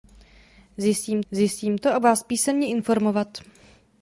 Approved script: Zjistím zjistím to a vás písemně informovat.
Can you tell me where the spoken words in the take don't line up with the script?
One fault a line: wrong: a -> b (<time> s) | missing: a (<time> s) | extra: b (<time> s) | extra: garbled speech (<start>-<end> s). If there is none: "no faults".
no faults